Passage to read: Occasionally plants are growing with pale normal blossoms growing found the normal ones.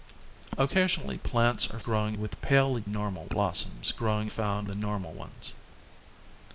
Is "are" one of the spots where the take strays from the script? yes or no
no